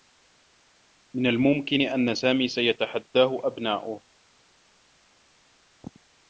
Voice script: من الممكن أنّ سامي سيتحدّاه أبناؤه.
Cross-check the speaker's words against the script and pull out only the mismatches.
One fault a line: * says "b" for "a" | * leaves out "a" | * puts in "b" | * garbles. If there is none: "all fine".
all fine